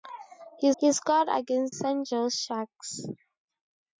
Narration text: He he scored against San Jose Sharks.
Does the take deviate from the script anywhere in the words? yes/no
no